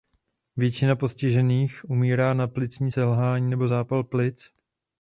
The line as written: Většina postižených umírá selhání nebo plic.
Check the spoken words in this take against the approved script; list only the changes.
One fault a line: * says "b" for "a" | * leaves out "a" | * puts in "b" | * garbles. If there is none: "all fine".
* puts in "na plicní"
* puts in "zápal"